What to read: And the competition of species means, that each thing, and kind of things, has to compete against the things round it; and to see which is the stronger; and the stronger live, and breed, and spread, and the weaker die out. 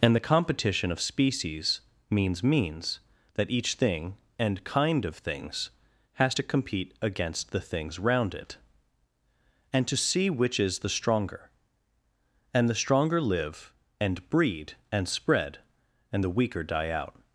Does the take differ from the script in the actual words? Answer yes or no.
yes